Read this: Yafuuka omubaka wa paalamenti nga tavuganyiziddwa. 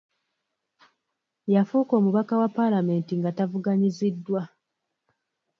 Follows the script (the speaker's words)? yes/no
yes